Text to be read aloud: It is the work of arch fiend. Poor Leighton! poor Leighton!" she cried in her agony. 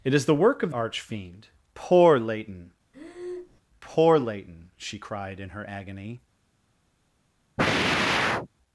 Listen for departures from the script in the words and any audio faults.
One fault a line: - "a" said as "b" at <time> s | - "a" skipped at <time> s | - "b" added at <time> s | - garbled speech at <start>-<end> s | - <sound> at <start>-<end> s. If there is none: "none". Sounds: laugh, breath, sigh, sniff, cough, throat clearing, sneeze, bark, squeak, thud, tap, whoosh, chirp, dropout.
- breath at 2.9-3.6 s
- sigh at 7.6-8.5 s